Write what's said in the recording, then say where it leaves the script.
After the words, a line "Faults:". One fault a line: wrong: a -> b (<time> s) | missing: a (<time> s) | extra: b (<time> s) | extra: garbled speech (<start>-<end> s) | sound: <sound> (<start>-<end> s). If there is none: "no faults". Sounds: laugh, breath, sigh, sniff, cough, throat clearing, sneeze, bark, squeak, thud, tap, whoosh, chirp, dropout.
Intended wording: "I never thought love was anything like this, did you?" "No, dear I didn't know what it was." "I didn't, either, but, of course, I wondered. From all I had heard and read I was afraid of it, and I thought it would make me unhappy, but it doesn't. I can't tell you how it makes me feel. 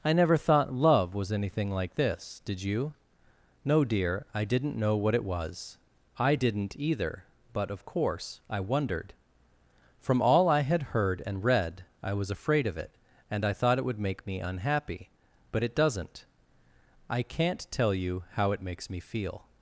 "I never thought love was anything like this, did you?" "No, dear I didn't know what it was." "I didn't, either, but, of course, I wondered. From all I had heard and read I was afraid of it, and I thought it would make me unhappy, but it doesn't. I can't tell you how it makes me feel.
Faults:
no faults